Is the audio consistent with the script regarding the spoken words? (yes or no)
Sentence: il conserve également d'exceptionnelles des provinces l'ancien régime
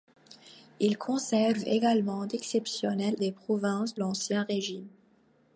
yes